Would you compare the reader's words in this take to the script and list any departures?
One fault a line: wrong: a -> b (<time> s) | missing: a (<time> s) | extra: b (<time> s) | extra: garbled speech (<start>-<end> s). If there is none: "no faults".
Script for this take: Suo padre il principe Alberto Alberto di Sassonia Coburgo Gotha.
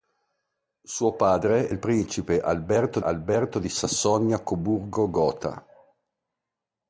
no faults